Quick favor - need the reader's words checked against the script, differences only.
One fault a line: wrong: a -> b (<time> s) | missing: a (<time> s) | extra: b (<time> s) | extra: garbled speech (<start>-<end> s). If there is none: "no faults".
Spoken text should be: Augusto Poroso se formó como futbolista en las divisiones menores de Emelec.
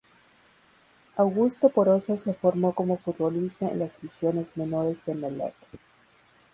no faults